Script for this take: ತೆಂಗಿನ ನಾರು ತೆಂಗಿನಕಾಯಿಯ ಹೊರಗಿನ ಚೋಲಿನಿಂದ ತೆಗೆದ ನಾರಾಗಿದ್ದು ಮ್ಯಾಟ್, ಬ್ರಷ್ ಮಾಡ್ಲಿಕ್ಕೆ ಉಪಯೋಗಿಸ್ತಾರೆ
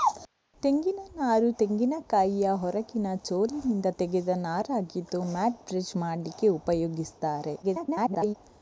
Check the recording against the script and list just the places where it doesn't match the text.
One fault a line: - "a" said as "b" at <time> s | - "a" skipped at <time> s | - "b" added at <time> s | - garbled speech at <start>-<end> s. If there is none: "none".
- garbled speech at 7.6-8.3 s